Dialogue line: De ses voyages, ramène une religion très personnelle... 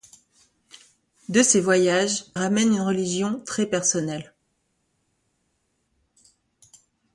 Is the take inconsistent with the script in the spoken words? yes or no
no